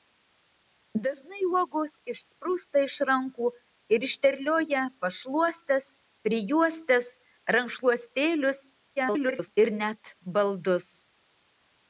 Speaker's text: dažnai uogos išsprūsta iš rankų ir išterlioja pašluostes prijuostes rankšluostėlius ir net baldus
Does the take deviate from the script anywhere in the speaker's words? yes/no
yes